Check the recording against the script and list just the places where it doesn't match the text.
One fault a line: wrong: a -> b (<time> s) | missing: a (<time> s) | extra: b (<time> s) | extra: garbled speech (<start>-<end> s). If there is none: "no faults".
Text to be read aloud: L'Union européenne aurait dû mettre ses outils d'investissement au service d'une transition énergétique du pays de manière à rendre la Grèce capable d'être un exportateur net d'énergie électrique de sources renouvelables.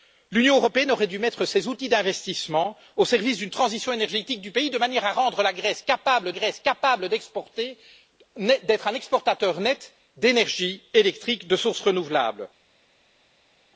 extra: Grèce capable (6.3 s)